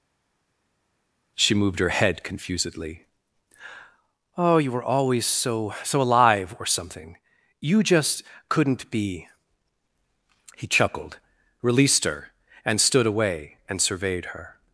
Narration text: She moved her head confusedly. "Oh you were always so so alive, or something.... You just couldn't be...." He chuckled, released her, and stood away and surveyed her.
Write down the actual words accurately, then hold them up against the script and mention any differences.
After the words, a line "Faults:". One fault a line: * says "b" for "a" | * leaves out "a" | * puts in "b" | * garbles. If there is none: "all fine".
She moved her head confusedly. "Oh you were always so so alive, or something.... You just couldn't be...." He chuckled, released her, and stood away and surveyed her.
Faults:
all fine